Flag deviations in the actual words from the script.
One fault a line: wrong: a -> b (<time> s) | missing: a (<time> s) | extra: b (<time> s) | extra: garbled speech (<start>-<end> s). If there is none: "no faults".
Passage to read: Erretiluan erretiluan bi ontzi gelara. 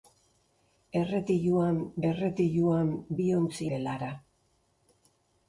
no faults